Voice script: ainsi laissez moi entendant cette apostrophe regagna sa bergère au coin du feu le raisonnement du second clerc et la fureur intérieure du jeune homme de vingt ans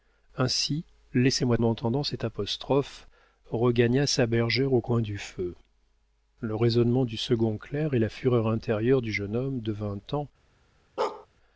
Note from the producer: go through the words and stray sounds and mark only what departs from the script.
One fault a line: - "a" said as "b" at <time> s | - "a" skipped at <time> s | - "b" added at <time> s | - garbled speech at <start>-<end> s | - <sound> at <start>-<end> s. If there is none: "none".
- bark at 11.0-11.3 s